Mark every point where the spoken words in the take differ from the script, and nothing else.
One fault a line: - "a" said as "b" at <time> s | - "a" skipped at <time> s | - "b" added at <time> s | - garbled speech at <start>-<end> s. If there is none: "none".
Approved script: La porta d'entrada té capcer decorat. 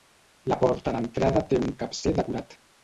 - "un" added at 1.7 s